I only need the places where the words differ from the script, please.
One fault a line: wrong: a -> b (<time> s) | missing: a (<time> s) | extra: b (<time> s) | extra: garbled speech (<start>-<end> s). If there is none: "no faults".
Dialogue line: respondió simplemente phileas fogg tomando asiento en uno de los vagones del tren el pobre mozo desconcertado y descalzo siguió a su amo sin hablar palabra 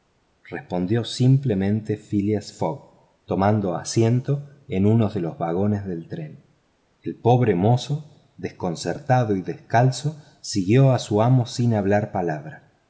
no faults